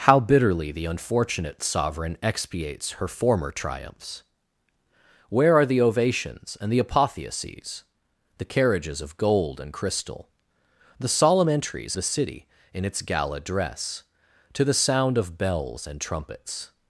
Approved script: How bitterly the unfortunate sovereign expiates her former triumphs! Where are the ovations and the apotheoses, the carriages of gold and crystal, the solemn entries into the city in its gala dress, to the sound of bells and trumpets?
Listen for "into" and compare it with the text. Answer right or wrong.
wrong